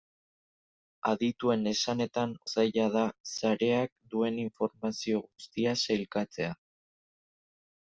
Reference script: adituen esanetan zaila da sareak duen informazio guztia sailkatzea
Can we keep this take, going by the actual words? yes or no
yes